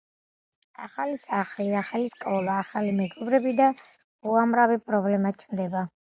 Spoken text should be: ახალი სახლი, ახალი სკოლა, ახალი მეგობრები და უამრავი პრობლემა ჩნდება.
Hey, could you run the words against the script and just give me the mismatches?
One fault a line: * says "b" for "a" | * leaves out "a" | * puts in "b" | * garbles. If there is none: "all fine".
all fine